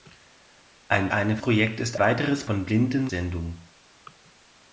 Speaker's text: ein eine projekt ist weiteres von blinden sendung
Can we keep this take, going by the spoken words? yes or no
yes